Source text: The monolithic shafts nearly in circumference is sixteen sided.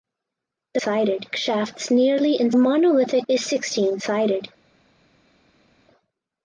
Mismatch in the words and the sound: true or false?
true